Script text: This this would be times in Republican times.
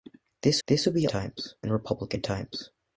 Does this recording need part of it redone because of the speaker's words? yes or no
no